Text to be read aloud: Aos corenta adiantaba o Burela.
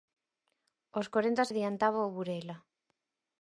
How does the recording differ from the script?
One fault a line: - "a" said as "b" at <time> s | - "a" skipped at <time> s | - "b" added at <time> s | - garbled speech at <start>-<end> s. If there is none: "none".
none